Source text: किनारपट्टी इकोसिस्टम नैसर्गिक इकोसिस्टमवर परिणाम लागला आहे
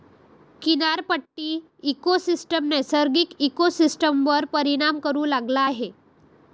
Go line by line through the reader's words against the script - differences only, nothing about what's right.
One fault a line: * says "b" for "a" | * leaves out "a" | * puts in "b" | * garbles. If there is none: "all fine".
* puts in "करू"